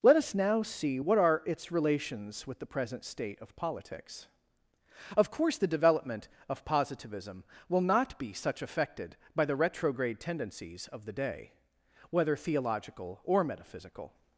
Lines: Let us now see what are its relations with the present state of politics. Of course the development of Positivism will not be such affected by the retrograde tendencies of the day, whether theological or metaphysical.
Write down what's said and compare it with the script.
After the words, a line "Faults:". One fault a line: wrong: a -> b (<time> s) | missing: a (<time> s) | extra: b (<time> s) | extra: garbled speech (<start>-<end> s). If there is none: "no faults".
Let us now see what are its relations with the present state of politics. Of course the development of Positivism will not be such affected by the retrograde tendencies of the day, whether theological or metaphysical.
Faults:
no faults